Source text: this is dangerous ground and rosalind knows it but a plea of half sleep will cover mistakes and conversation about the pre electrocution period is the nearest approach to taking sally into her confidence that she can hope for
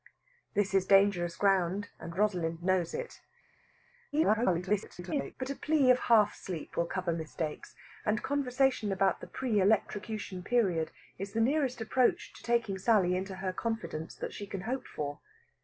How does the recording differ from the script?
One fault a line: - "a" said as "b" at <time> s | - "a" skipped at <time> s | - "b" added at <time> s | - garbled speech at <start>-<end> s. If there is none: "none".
- garbled speech at 4.1-5.3 s